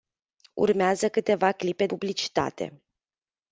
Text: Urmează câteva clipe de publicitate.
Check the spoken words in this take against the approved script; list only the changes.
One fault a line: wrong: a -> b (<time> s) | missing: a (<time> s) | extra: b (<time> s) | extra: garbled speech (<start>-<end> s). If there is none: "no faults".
missing: de (1.9 s)